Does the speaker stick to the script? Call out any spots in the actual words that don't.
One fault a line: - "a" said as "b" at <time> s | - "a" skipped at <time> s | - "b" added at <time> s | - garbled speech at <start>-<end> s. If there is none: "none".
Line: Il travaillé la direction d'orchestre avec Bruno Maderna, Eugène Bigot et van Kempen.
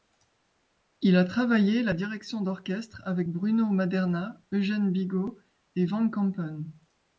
- "a" added at 1.1 s